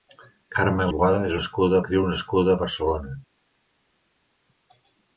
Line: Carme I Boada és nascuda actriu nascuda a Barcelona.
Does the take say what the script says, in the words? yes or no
yes